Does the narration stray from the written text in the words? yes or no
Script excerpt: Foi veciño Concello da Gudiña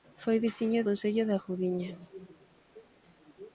no